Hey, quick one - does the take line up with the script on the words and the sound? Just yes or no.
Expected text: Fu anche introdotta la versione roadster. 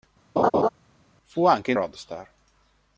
no